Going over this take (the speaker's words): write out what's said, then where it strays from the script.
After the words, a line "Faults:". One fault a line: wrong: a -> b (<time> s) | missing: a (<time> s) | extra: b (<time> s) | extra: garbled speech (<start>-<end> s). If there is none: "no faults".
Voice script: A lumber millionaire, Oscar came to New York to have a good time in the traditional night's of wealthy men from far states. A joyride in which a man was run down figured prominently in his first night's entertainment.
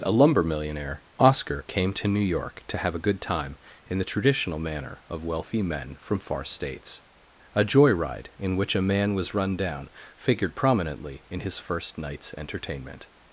A lumber millionaire, Oscar came to New York to have a good time in the traditional manner of wealthy men from far states. A joyride in which a man was run down figured prominently in his first night's entertainment.
Faults:
wrong: night's -> manner (4.6 s)